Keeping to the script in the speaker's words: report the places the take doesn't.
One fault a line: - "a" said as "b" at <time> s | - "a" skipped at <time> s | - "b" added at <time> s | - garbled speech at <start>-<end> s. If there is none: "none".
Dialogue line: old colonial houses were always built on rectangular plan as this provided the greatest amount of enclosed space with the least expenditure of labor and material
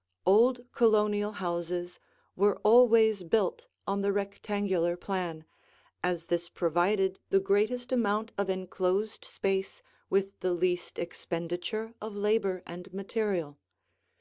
- "the" added at 4.0 s